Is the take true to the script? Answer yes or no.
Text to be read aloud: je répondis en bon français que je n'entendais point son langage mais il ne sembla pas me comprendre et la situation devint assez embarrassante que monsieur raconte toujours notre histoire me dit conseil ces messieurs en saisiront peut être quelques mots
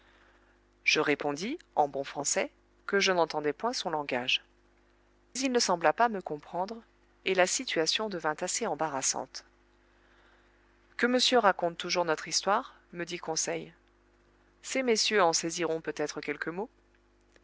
no